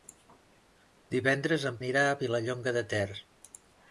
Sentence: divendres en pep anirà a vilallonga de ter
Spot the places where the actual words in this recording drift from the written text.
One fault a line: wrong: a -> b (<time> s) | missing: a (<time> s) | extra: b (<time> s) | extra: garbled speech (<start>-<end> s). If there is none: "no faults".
missing: pep (1.8 s)